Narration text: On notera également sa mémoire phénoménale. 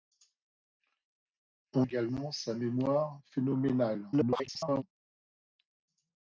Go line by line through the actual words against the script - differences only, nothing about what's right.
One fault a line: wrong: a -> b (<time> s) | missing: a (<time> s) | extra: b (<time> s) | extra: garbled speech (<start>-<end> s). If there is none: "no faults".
missing: notera (1.9 s)
extra: garbled speech (4.1-4.8 s)